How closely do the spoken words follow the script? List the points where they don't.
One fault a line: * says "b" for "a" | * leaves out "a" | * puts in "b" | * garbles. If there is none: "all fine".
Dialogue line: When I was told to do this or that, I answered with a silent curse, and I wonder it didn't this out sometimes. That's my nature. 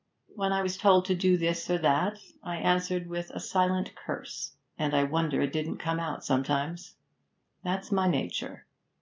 * says "come" for "this"